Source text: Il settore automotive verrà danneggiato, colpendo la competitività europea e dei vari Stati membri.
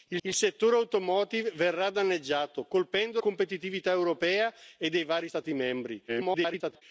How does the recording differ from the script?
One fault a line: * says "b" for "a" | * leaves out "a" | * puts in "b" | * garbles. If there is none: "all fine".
* puts in "il"
* leaves out "la"
* garbles